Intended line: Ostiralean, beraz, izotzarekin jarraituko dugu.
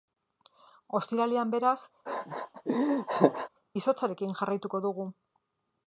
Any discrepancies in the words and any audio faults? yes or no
yes